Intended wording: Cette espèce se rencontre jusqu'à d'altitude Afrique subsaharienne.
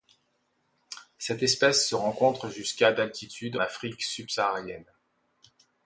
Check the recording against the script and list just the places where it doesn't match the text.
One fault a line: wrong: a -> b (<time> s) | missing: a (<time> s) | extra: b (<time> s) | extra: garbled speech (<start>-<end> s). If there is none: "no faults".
no faults